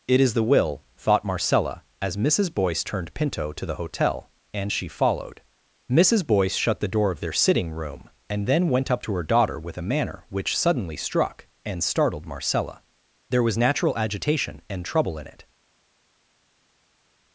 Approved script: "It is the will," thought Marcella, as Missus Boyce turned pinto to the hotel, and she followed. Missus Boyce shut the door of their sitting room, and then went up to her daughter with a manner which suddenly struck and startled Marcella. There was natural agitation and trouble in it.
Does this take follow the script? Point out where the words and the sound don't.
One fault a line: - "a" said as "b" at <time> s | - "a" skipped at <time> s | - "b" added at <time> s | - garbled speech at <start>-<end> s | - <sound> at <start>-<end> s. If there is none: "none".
none